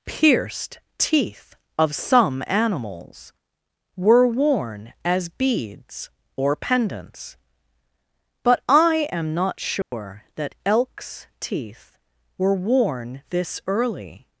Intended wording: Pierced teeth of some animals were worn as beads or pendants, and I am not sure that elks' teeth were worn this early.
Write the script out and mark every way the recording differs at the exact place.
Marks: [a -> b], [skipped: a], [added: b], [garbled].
Pierced teeth of some animals were worn as beads or pendants, [and -> but] I am not sure that elks' teeth were worn this early.